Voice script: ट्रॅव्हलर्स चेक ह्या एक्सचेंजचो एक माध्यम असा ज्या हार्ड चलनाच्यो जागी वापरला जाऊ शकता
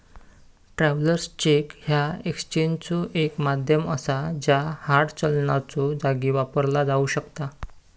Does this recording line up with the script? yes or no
yes